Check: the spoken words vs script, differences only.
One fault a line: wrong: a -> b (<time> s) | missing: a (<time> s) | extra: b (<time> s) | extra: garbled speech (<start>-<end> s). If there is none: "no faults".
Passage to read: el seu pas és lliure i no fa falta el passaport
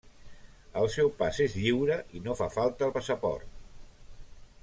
no faults